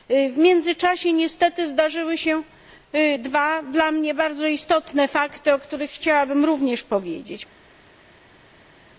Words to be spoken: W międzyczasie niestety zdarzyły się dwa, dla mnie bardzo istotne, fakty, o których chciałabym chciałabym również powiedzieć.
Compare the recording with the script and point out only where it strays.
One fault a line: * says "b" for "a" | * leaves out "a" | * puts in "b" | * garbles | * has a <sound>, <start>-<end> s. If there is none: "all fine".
* leaves out "chciałabym"